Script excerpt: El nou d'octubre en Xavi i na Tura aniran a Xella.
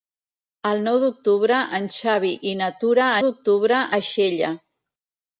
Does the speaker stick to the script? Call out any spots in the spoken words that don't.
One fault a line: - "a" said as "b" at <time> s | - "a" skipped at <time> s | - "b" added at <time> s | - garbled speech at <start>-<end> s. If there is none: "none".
- "aniran" said as "d'octubre" at 3.2 s